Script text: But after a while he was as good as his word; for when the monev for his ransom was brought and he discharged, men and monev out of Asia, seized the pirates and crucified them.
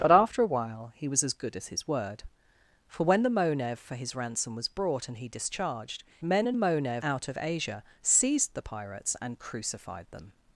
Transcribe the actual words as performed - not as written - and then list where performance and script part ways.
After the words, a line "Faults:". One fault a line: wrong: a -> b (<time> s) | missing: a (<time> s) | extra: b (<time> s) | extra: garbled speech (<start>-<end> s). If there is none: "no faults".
But after a while he was as good as his word; for when the monev for his ransom was brought and he discharged, men and monev out of Asia, seized the pirates and crucified them.
Faults:
no faults